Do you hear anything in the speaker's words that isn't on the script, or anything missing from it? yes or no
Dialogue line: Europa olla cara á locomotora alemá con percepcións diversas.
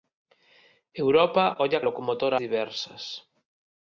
yes